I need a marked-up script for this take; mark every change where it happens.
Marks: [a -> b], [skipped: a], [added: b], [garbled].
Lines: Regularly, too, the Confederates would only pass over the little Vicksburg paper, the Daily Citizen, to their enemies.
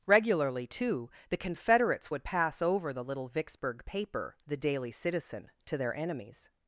Regularly, too, the Confederates would [skipped: only] pass over the little Vicksburg paper, the Daily Citizen, to their enemies.